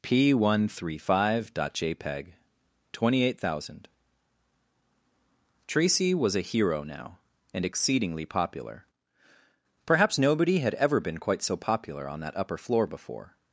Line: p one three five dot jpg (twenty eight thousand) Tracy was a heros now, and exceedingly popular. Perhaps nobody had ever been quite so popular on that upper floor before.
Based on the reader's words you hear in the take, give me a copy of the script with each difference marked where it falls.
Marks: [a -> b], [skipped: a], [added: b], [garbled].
p one three five dot jpg (twenty eight thousand) Tracy was a [heros -> hero] now, and exceedingly popular. Perhaps nobody had ever been quite so popular on that upper floor before.